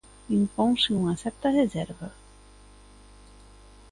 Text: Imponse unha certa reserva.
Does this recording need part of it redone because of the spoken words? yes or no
no